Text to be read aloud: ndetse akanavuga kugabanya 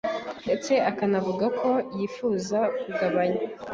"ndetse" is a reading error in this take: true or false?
false